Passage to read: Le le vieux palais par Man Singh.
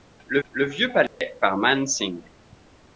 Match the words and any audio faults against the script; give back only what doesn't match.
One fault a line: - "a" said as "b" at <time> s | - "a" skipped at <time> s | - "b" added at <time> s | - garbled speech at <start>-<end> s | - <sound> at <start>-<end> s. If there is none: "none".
- dropout at 1.1-1.2 s